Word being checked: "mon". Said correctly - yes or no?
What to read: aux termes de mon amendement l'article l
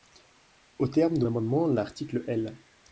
no